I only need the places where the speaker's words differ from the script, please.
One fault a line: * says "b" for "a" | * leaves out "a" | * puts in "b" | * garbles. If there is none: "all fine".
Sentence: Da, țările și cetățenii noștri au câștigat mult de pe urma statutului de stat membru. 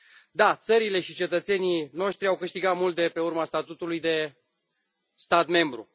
all fine